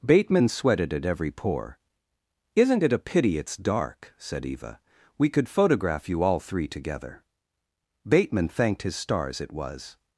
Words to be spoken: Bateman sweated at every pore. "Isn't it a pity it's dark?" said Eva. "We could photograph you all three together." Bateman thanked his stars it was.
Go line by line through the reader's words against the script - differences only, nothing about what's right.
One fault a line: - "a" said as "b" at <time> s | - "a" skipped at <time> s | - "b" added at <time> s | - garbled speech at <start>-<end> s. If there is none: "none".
none